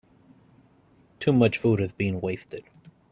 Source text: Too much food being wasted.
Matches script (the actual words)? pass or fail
fail